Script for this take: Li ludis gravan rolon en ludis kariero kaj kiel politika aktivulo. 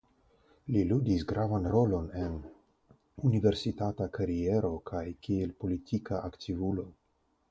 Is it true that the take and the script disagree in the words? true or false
true